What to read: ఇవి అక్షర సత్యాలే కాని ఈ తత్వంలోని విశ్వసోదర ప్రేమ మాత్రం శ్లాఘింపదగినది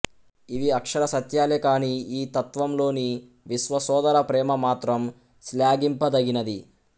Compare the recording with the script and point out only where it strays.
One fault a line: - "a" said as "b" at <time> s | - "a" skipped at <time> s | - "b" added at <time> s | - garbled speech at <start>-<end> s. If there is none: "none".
none